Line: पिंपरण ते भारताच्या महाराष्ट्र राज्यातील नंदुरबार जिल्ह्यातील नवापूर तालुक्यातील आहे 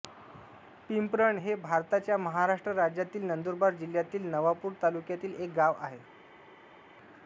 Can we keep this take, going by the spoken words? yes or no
no